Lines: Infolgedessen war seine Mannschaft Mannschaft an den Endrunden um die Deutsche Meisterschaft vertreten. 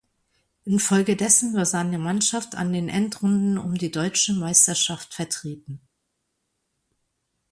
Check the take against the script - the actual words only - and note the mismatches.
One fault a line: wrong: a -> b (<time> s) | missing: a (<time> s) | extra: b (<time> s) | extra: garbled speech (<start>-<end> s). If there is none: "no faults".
missing: Mannschaft (2.5 s)